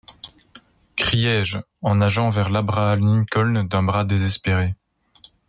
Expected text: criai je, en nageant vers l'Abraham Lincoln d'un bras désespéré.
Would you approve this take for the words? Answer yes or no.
yes